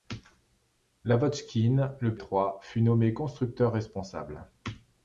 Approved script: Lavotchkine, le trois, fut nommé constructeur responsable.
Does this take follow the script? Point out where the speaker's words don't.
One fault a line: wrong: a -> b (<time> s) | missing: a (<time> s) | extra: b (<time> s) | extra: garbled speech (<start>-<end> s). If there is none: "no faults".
no faults